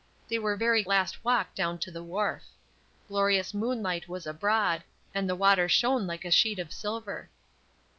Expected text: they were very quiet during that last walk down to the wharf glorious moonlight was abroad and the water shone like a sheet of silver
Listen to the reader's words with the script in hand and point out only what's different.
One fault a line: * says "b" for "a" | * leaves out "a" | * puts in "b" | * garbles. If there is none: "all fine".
* leaves out "quiet during that"